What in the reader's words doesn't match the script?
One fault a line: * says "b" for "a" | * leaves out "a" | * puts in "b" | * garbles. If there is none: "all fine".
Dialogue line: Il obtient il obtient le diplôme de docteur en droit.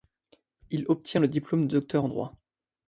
* leaves out "il obtient"